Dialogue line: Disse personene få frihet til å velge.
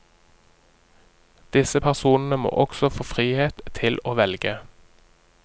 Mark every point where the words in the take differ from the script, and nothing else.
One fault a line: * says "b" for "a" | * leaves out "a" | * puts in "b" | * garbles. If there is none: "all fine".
* puts in "må også"